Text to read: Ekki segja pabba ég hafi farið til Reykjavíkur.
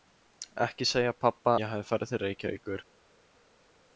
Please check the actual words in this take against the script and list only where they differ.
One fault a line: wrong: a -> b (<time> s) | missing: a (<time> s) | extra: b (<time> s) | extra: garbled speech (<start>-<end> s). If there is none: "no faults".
no faults